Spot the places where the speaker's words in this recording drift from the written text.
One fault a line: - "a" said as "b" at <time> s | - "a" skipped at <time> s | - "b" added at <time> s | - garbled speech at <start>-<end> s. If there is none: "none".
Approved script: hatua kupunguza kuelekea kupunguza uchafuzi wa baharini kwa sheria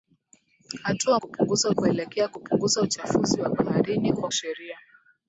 none